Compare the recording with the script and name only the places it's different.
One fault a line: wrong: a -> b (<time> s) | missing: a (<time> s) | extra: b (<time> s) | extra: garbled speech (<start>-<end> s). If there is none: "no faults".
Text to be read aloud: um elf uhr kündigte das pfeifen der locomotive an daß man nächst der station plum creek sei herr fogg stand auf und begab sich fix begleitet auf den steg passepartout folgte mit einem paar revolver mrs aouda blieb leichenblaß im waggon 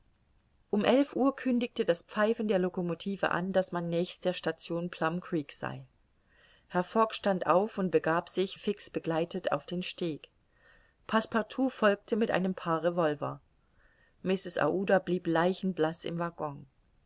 no faults